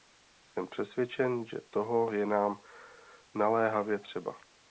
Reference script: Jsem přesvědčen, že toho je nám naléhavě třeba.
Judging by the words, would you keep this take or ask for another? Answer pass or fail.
pass